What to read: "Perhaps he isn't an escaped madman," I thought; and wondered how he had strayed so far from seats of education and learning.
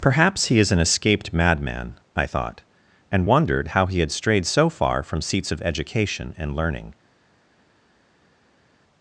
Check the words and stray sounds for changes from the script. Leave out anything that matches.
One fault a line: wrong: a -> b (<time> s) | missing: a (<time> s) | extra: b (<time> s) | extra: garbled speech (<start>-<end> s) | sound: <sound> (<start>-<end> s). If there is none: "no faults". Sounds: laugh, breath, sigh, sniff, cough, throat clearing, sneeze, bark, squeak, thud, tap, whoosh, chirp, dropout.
wrong: isn't -> is (0.6 s)